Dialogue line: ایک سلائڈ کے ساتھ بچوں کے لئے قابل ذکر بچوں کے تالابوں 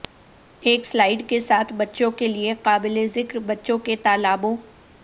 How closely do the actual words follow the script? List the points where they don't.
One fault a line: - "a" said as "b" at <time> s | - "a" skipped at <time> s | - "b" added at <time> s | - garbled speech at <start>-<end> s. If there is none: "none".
none